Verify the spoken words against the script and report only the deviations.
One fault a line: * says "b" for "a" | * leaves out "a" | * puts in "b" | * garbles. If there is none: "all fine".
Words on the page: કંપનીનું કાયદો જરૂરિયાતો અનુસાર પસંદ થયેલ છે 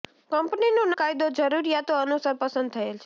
all fine